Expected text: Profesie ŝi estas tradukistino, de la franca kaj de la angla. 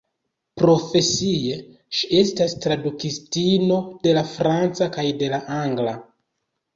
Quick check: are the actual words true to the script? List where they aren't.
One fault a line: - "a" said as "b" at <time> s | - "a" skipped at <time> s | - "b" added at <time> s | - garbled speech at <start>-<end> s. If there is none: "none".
none